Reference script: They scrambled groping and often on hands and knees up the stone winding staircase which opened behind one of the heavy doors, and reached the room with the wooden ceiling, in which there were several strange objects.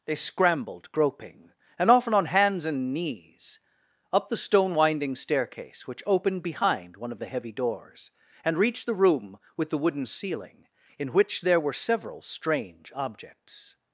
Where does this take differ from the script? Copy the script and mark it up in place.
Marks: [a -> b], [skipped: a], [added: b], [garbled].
They scrambled groping and often on hands and knees up the stone winding staircase which opened behind one of the heavy doors, and reached the room with the wooden ceiling, in which there were several strange objects.